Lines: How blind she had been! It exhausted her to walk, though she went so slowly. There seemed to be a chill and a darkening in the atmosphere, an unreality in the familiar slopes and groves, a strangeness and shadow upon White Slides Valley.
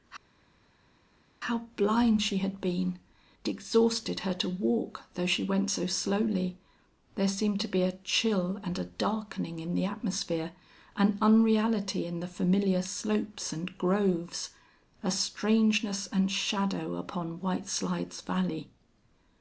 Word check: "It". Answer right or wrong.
wrong